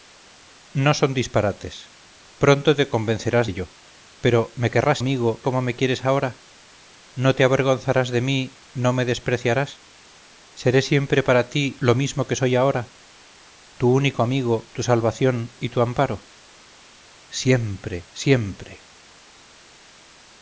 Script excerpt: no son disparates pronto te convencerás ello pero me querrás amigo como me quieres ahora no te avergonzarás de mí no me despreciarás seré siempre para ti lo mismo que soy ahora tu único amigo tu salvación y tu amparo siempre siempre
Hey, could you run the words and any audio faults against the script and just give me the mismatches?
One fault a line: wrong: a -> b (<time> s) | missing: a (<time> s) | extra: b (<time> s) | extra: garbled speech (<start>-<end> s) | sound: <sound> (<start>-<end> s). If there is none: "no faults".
no faults